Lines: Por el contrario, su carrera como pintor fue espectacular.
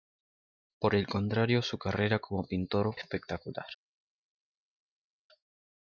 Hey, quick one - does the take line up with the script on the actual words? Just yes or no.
no